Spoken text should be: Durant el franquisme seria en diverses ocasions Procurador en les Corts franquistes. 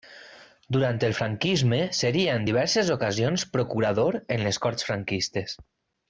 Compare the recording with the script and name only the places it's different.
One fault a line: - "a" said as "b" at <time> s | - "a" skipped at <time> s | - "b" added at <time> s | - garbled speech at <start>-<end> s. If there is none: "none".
none